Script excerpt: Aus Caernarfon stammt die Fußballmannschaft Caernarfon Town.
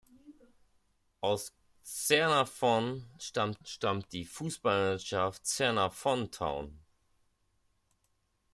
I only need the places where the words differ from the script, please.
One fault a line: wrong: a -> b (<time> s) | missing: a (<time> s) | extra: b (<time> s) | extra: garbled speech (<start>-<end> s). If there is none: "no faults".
extra: stammt (3.6 s)